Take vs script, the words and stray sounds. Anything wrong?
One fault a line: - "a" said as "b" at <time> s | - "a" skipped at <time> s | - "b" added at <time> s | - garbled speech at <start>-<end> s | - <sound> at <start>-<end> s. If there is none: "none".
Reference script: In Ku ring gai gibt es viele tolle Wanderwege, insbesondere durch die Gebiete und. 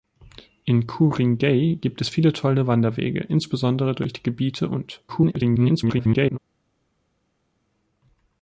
- garbled speech at 5.1-6.4 s